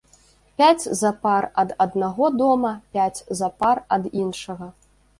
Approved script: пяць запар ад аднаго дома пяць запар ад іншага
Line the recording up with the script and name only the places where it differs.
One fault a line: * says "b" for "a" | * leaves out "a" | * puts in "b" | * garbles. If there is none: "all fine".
all fine